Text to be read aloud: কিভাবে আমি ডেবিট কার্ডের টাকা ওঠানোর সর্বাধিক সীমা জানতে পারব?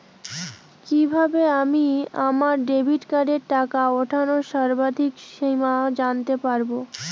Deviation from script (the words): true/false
true